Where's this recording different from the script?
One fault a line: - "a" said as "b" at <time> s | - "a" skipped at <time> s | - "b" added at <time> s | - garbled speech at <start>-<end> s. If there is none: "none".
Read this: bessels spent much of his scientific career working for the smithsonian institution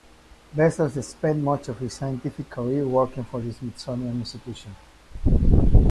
none